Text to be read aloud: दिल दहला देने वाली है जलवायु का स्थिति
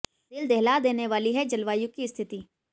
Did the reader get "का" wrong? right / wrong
wrong